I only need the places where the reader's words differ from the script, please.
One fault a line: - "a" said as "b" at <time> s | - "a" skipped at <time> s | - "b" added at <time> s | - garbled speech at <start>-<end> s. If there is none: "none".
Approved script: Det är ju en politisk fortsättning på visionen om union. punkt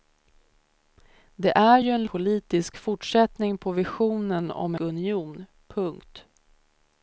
none